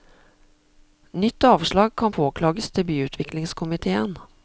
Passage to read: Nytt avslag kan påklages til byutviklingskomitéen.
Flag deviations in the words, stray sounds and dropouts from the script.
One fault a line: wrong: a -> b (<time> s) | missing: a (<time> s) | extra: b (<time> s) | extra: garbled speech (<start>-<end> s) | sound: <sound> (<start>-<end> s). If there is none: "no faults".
no faults